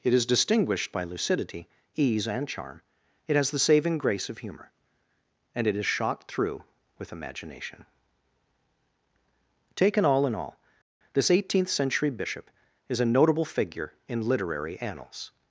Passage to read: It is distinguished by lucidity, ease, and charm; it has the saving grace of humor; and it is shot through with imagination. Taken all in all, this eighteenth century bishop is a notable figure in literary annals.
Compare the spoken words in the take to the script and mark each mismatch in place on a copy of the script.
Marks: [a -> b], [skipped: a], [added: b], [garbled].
It is distinguished by lucidity, ease, and charm; it has the saving grace of humor; and it is shot through with imagination. Taken all in all, this eighteenth century bishop is a notable figure in literary annals.